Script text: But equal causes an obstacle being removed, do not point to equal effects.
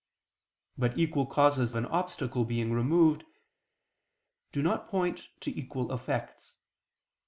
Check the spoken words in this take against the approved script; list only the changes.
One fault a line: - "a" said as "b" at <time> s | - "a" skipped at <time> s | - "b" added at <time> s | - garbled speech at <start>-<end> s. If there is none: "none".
none